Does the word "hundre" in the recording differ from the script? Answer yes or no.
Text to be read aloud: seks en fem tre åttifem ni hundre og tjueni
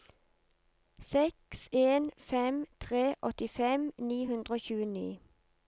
no